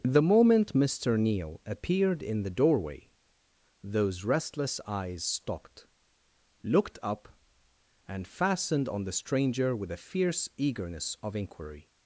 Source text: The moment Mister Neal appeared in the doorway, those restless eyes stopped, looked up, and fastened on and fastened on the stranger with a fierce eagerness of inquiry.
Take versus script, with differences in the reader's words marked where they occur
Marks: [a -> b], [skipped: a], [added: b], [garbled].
The moment Mister Neal appeared in the doorway, those restless eyes stopped, looked up, and fastened on [skipped: and fastened on] the stranger with a fierce eagerness of inquiry.